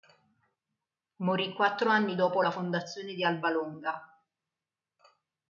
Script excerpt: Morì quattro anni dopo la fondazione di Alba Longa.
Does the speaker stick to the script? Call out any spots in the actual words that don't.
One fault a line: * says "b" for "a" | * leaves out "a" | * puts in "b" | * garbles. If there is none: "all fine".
all fine